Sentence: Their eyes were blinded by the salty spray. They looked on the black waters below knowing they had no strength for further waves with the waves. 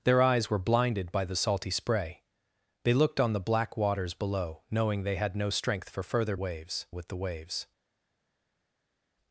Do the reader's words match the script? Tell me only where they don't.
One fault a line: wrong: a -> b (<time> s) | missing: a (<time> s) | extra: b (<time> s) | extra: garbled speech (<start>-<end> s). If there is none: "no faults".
no faults